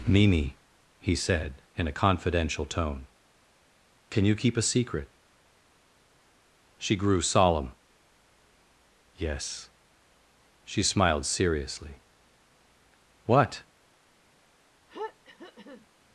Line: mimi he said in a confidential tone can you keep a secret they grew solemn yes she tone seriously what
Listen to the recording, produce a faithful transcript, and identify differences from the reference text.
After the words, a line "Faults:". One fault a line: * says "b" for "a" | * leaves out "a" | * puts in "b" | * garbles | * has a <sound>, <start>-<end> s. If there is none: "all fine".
mimi he said in a confidential tone can you keep a secret she grew solemn yes she smiled seriously what
Faults:
* says "she" for "they"
* says "smiled" for "tone"
* has a throat clearing, 14.9-15.9 s